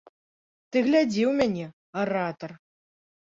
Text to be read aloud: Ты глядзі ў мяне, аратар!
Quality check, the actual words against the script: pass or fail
pass